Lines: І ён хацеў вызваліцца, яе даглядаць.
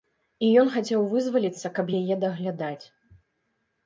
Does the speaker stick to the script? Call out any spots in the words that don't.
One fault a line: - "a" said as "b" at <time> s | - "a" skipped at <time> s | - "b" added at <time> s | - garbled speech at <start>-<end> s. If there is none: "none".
- "каб" added at 1.8 s